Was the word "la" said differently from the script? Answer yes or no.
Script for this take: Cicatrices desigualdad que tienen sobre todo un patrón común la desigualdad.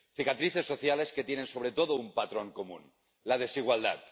no